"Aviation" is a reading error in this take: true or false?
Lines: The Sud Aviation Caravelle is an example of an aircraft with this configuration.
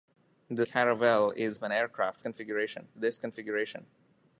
true